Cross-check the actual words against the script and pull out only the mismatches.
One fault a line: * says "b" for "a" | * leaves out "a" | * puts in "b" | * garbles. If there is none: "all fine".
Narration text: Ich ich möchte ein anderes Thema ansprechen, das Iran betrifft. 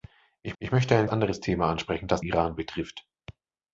all fine